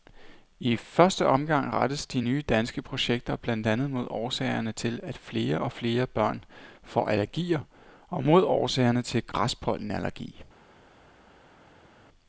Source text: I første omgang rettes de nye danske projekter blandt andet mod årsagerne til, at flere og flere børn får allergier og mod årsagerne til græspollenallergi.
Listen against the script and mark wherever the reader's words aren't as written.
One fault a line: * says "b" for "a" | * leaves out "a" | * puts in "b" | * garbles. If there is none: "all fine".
all fine